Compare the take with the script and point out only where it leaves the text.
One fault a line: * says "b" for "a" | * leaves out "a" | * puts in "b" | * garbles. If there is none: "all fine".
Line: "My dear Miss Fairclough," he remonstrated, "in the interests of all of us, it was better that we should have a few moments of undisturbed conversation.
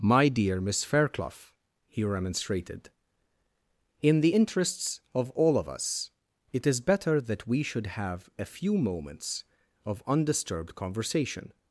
* says "is" for "was"